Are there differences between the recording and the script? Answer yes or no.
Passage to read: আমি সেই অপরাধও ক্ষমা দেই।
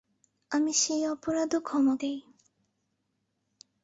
no